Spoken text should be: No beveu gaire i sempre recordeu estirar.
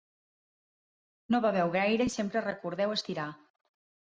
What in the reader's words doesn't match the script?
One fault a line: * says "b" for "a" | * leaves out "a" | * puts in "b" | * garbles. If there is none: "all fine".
all fine